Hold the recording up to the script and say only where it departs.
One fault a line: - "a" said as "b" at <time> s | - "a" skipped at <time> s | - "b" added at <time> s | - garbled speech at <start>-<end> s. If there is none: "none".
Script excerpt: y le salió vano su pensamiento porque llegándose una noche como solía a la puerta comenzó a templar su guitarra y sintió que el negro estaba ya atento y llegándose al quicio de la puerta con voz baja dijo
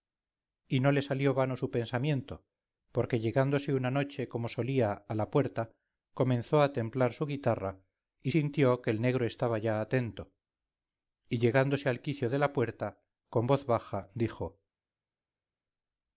- "no" added at 0.8 s